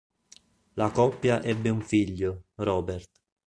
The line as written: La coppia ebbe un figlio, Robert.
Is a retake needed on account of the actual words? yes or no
no